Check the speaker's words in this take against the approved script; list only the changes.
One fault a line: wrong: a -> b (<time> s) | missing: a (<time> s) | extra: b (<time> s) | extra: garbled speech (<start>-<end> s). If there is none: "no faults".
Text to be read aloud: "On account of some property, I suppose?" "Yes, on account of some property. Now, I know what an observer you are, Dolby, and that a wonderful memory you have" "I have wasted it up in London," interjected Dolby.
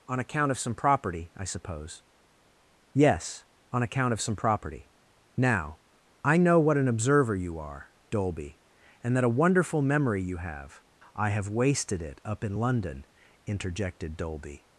no faults